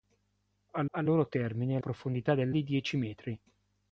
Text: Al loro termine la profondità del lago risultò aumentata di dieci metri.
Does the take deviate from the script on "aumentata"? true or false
true